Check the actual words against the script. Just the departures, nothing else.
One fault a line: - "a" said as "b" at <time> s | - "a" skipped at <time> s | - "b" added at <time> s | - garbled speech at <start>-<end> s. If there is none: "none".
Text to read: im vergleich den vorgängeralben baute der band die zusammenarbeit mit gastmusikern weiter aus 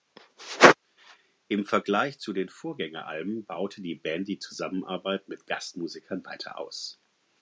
- "zu" added at 2.2 s
- "der" said as "die" at 3.8 s